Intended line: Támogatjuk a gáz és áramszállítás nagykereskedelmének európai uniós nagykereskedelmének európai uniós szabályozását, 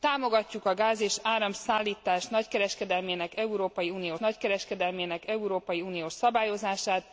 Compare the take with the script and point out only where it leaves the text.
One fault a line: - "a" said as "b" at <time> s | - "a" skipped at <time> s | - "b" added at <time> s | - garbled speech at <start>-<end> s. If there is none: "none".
none